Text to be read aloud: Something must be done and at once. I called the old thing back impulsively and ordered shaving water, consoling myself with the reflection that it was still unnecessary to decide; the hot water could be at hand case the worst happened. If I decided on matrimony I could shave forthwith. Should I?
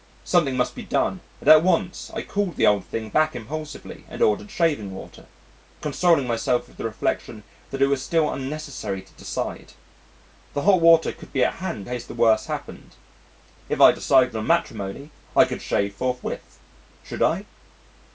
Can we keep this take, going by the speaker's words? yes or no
yes